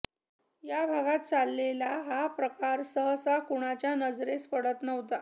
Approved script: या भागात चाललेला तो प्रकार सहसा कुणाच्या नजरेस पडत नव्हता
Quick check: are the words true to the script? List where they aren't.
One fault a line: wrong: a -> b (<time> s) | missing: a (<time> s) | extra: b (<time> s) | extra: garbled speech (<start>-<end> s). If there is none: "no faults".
wrong: तो -> हा (2.0 s)